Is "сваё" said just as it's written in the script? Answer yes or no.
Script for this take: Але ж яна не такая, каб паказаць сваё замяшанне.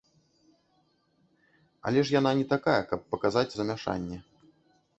no